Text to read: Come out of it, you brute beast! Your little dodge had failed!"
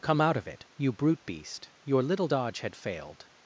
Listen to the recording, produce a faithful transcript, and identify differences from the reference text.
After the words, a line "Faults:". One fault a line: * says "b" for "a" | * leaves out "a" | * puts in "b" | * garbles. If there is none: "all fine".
Come out of it, you brute beast! Your little dodge had failed!"
Faults:
all fine